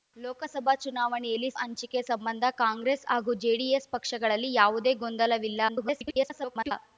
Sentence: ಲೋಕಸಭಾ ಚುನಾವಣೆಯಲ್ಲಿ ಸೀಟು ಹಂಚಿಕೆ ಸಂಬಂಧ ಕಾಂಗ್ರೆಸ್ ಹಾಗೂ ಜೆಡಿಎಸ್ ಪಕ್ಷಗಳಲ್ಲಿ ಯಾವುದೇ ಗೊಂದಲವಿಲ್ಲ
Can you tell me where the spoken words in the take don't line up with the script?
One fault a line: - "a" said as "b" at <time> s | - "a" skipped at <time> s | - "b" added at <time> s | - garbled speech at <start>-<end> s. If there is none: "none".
- "ಸೀಟು" skipped at 1.5 s
- garbled speech at 5.7-6.7 s